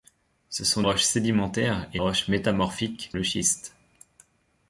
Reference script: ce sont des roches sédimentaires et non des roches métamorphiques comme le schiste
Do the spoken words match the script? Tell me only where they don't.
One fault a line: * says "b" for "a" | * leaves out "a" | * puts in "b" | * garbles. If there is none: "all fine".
* leaves out "des"
* leaves out "non des"
* leaves out "comme"